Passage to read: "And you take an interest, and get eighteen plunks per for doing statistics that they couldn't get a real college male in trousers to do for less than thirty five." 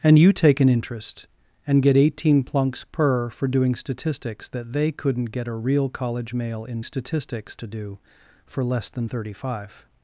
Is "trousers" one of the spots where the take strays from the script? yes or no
yes